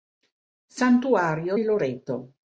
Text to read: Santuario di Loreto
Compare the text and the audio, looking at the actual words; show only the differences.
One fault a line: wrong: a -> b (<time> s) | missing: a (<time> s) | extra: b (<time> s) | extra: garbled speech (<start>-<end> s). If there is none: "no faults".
no faults